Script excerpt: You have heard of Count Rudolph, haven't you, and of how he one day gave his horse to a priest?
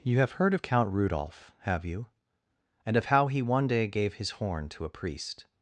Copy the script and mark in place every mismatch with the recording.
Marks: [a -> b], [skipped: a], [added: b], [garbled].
You have heard of Count Rudolph, [haven't -> have] you, and of how he one day gave his [horse -> horn] to a priest?